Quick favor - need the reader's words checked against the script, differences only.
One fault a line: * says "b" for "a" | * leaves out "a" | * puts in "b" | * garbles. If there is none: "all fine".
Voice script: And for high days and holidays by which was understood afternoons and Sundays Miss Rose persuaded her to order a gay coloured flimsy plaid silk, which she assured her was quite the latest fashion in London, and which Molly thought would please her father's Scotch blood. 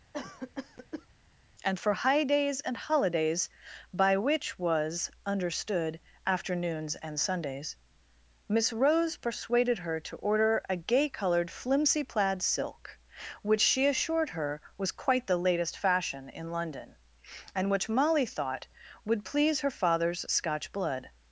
all fine